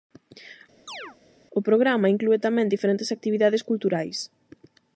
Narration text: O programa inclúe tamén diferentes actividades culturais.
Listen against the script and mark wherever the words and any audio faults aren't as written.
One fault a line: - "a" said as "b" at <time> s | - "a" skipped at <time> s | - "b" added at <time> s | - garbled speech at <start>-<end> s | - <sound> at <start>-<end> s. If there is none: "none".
- chirp at 0.9-1.2 s